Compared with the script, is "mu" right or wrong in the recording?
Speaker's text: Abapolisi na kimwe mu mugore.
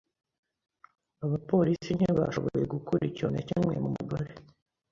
right